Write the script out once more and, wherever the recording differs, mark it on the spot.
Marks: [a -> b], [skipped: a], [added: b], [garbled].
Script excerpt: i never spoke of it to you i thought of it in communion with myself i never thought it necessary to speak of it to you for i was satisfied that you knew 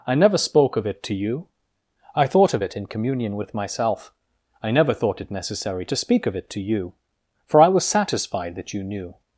i never spoke of it to you i thought of it in communion with myself i never thought it necessary to speak of it to you for i was satisfied that you knew